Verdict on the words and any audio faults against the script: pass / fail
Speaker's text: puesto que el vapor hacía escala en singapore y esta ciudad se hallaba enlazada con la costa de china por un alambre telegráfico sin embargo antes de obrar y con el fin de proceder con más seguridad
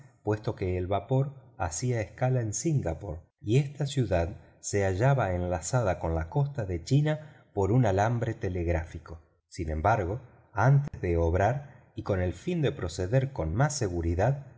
fail